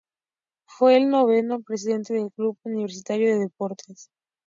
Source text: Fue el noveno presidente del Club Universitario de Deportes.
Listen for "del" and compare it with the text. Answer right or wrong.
right